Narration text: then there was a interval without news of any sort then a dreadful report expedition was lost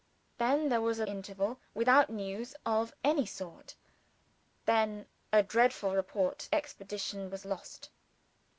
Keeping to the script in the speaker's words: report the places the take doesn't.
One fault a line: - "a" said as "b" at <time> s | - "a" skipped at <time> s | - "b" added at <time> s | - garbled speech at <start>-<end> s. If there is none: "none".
none